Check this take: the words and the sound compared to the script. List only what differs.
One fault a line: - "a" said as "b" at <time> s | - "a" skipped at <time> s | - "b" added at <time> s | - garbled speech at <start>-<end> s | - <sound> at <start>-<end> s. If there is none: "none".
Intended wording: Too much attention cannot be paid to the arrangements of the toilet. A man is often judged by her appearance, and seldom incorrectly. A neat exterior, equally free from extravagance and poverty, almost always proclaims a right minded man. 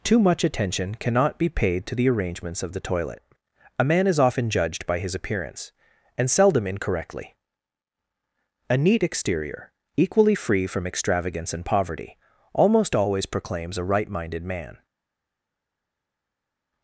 - "her" said as "his" at 5.0 s